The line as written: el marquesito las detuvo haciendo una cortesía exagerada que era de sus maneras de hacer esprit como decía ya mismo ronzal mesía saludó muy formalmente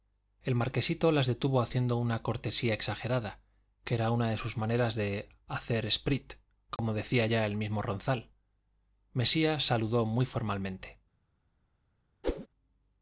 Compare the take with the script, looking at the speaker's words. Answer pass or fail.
fail